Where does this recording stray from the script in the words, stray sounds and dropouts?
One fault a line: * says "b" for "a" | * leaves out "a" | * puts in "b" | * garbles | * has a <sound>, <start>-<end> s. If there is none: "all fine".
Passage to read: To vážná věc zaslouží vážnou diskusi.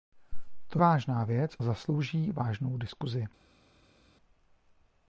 all fine